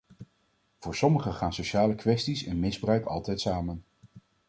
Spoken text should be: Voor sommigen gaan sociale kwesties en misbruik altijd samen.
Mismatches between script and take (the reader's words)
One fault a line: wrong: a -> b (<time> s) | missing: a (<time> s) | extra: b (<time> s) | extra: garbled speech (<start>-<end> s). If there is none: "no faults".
no faults